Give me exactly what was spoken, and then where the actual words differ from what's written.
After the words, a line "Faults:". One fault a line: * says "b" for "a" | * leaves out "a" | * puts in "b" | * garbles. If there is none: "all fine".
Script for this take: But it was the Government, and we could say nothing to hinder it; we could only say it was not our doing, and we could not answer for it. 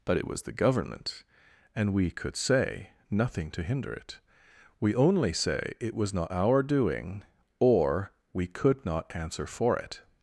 But it was the Government, and we could say nothing to hinder it; we only say it was not our doing, or we could not answer for it.
Faults:
* leaves out "could"
* says "or" for "and"